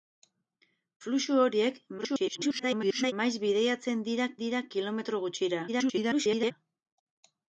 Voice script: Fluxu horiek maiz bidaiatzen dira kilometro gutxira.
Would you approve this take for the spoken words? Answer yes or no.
no